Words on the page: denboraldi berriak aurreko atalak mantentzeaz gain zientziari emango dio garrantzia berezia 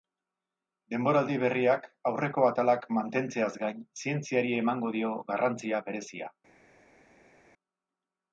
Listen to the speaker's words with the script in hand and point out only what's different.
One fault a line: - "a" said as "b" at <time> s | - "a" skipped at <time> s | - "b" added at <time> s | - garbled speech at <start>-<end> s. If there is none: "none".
none